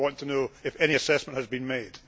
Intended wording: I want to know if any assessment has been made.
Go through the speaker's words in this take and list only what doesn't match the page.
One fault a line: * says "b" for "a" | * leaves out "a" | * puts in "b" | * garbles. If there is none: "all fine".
all fine